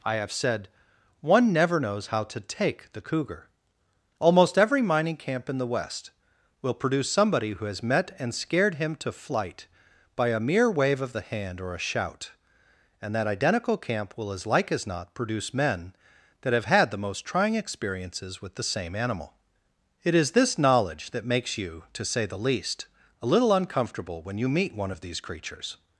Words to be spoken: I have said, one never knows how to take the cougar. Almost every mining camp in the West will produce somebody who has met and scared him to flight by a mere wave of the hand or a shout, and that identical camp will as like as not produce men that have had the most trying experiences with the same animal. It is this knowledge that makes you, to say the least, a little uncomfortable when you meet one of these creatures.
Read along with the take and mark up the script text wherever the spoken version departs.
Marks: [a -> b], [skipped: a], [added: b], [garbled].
I have said, one never knows how to take the cougar. Almost every mining camp in the West will produce somebody who has met and scared him to flight by a mere wave of the hand or a shout, and that identical camp will as like as not produce men that have had the most trying experiences with the same animal. It is this knowledge that makes you, to say the least, a little uncomfortable when you meet one of these creatures.